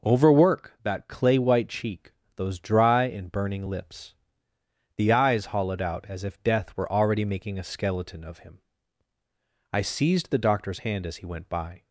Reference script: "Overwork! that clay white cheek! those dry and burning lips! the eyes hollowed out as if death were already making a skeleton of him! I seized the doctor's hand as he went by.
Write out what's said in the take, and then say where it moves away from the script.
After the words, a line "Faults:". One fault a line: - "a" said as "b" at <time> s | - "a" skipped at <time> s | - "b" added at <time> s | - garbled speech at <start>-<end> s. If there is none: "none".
"Overwork! that clay white cheek! those dry and burning lips! the eyes hollowed out as if death were already making a skeleton of him! I seized the doctor's hand as he went by.
Faults:
none